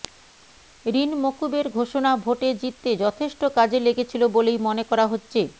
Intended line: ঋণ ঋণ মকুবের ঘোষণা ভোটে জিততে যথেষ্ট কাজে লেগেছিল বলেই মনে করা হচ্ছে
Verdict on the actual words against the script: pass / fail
fail